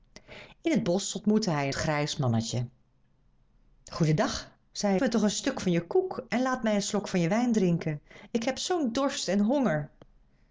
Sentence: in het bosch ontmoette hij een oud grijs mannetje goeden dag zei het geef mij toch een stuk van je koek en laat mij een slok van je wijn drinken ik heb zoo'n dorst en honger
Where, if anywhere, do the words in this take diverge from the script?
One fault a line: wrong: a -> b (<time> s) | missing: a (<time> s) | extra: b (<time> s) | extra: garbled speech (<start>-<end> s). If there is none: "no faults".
missing: een oud (1.7 s)
missing: het geef (5.0 s)